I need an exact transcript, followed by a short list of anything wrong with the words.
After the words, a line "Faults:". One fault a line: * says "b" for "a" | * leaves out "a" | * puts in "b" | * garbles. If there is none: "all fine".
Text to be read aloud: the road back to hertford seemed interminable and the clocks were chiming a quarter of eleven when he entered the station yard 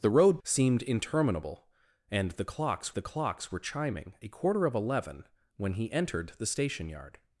the road seemed interminable and the clocks the clocks were chiming a quarter of eleven when he entered the station yard
Faults:
* leaves out "back to hertford"
* puts in "the clocks"